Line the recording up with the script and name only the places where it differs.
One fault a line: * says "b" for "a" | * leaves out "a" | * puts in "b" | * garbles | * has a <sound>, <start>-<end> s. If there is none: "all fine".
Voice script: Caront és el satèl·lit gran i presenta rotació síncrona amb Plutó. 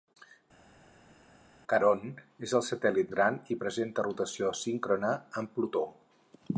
all fine